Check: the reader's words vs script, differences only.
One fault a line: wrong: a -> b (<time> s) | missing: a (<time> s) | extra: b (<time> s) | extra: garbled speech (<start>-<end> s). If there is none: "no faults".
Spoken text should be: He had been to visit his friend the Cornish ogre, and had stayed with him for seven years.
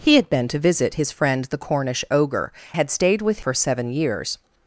missing: and (2.5 s)
missing: him (3.4 s)